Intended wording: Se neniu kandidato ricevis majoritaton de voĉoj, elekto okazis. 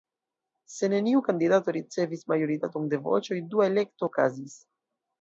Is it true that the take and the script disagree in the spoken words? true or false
true